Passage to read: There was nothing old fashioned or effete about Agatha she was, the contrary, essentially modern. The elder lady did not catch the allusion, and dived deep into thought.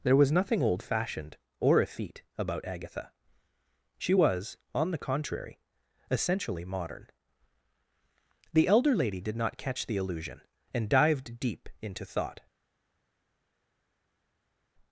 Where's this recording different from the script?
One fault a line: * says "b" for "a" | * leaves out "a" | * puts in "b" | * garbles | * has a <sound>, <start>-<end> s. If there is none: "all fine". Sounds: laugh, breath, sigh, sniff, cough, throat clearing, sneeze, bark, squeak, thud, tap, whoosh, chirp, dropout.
* puts in "on"